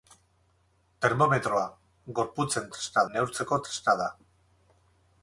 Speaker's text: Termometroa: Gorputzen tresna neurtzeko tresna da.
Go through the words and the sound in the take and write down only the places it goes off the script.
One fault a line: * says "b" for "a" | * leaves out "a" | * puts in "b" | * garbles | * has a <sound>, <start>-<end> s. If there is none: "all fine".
all fine